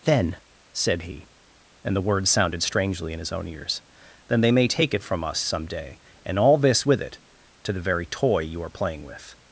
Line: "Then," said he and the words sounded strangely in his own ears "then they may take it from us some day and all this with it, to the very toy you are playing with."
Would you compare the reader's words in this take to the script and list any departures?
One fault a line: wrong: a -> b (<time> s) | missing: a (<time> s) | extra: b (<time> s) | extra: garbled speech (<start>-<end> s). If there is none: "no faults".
no faults